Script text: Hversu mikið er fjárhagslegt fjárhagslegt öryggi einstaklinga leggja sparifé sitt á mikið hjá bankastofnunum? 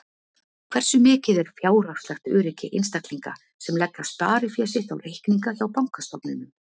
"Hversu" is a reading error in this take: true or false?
false